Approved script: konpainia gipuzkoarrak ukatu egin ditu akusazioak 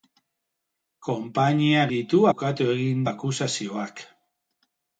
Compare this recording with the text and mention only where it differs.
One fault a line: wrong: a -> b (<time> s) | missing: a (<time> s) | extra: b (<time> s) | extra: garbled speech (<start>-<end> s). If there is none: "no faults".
wrong: gipuzkoarrak -> ditu (1.9 s)
missing: ditu (3.1 s)